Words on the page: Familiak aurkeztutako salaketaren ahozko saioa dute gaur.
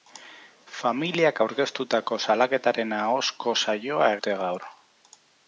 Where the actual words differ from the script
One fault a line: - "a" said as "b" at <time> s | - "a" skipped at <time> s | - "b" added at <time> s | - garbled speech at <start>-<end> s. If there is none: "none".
none